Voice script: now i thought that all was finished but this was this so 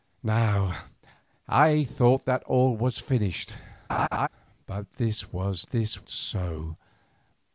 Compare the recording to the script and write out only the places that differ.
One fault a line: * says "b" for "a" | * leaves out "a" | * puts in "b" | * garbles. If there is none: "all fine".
all fine